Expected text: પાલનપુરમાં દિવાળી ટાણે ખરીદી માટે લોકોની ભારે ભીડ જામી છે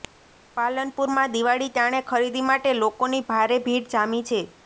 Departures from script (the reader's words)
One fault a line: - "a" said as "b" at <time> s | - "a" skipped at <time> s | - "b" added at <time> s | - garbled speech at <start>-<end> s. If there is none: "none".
none